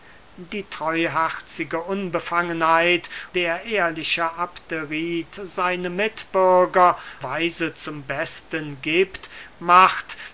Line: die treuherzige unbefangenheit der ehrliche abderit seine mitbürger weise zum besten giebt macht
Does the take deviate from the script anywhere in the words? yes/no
no